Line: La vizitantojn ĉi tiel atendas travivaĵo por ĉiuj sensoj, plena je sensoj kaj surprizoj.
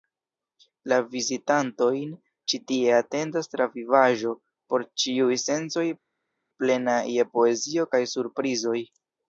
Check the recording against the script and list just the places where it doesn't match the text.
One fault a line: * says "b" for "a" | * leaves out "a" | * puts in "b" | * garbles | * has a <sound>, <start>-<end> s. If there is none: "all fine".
* says "tie" for "tiel"
* says "poezio" for "sensoj"